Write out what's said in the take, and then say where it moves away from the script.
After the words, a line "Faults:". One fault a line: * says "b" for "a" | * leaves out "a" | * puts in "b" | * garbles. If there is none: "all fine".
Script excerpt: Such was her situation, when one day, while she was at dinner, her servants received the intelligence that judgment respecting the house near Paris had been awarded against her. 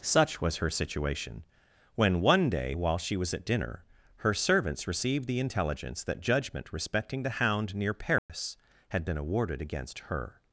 Such was her situation, when one day, while she was at dinner, her servants received the intelligence that judgment respecting the hound near Paris had been awarded against her.
Faults:
* says "hound" for "house"